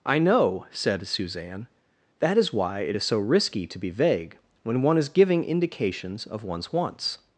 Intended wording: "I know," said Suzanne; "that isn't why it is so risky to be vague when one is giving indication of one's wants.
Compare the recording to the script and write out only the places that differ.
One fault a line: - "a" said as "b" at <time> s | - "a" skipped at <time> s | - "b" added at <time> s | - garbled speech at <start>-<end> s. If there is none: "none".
- "isn't" said as "is" at 2.4 s
- "indication" said as "indications" at 5.4 s